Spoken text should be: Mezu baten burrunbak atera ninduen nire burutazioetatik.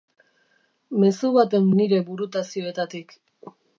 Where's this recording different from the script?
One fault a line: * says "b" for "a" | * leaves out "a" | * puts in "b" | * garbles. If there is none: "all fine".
* leaves out "burrunbak atera ninduen"